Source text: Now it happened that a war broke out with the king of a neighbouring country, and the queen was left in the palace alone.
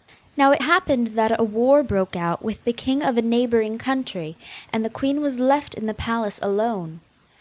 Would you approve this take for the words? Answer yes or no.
yes